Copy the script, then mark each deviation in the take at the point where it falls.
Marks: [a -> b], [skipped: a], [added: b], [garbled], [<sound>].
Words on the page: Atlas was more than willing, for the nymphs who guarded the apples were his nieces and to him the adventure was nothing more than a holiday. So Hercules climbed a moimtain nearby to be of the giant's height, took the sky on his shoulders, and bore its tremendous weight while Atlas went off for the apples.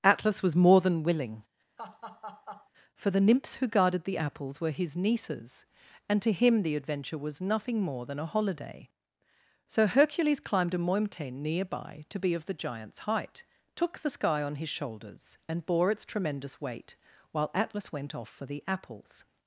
Atlas was more than willing, [laugh] for the nymphs who guarded the apples were his nieces and to him the adventure was nothing more than a holiday. So Hercules climbed a moimtain nearby to be of the giant's height, took the sky on his shoulders, and bore its tremendous weight while Atlas went off for the apples.